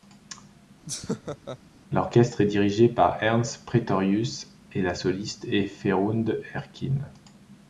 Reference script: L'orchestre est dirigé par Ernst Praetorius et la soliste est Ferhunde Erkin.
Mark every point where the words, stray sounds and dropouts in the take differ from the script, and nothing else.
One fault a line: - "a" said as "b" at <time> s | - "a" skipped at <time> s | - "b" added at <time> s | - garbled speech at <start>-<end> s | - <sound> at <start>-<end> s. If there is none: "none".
- laugh at 0.9-1.6 s